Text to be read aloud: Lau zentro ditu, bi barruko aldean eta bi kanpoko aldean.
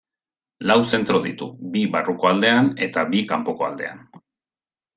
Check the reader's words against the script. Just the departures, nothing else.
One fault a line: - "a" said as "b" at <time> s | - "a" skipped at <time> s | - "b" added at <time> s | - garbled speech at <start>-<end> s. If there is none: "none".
none